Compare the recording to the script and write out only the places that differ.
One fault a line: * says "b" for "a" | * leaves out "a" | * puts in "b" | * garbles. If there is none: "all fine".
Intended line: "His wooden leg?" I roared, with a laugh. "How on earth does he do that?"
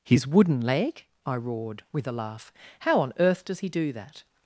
all fine